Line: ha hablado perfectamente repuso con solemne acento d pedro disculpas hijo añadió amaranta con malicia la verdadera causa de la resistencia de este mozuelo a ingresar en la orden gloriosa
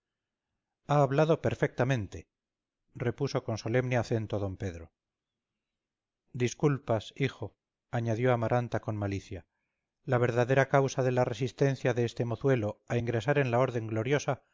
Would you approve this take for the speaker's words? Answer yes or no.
yes